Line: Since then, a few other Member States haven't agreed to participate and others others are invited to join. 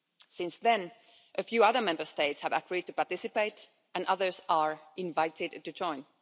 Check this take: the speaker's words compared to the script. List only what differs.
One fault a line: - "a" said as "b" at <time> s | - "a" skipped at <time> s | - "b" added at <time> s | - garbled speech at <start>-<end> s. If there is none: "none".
- "haven't" said as "have" at 2.4 s
- "others" skipped at 4.4 s